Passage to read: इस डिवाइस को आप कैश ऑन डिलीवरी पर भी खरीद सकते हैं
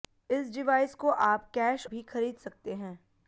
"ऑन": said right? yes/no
no